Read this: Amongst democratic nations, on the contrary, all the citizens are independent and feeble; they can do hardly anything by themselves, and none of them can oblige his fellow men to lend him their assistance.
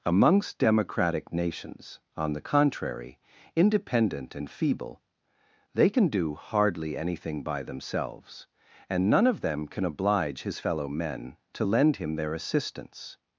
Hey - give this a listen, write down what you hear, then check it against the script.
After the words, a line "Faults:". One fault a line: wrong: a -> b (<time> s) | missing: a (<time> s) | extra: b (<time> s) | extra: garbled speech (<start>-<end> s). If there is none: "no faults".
Amongst democratic nations, on the contrary, independent and feeble; they can do hardly anything by themselves, and none of them can oblige his fellow men to lend him their assistance.
Faults:
missing: all the citizens are (3.2 s)